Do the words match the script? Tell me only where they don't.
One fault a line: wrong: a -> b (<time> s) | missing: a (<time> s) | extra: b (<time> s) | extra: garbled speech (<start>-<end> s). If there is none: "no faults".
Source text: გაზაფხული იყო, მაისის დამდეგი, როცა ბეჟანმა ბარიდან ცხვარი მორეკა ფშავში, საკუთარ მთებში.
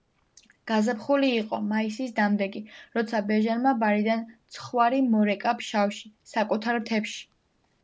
no faults